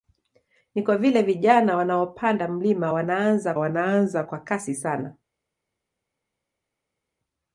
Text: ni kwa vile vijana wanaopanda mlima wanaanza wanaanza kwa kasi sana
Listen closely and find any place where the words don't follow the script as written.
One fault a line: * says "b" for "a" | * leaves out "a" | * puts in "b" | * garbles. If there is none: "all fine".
all fine